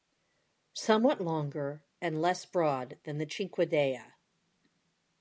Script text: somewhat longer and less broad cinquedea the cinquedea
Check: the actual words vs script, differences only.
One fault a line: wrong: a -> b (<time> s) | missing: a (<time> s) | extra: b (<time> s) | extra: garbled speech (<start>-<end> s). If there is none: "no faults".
wrong: cinquedea -> than (3.0 s)